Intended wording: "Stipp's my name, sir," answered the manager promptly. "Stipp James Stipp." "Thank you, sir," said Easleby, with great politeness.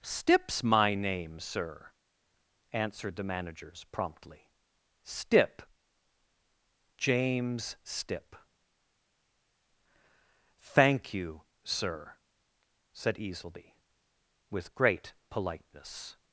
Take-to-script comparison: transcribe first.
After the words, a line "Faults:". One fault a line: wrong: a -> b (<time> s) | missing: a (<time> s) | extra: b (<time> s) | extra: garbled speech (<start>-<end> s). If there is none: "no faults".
"Stipp's my name, sir," answered the managers promptly. "Stipp James Stipp." "Thank you, sir," said Easleby, with great politeness.
Faults:
wrong: manager -> managers (3.2 s)